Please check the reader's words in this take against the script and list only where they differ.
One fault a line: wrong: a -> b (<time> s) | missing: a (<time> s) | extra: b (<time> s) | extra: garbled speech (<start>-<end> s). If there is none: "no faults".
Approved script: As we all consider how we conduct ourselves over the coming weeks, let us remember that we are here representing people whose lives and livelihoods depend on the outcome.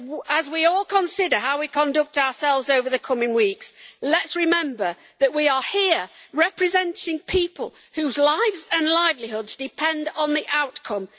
no faults